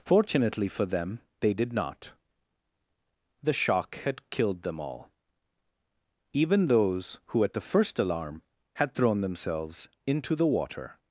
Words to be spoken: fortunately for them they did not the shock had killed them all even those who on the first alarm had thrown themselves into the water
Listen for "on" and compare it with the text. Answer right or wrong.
wrong